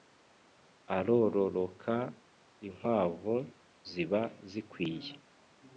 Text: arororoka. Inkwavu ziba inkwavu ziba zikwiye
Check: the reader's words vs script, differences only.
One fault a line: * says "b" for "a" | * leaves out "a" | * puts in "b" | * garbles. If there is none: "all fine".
* leaves out "inkwavu ziba"